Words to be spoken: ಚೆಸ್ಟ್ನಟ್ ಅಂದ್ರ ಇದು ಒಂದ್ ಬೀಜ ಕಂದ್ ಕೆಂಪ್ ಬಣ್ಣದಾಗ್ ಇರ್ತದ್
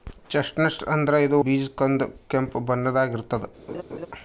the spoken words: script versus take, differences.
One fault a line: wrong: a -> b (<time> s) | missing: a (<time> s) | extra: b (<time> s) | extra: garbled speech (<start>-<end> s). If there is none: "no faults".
missing: ಒಂದ್ (1.4 s)